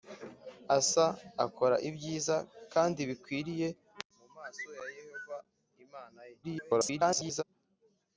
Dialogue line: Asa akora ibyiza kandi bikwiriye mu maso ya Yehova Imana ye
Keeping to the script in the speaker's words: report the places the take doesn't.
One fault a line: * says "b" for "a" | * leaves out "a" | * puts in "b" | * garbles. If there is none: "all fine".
* garbles